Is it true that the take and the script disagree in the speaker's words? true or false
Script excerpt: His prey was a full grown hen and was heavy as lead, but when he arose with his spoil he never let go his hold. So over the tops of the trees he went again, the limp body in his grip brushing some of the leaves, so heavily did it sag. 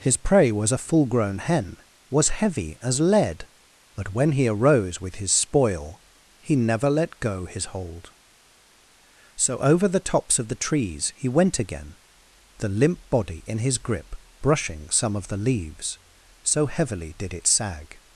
true